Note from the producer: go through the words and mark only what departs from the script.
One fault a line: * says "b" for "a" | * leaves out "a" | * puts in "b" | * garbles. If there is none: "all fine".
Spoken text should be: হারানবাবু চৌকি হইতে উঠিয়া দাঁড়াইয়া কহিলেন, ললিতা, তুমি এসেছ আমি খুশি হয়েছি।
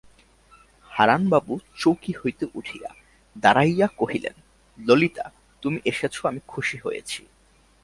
all fine